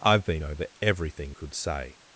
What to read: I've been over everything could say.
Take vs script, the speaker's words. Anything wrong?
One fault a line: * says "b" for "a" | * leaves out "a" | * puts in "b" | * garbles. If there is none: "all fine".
all fine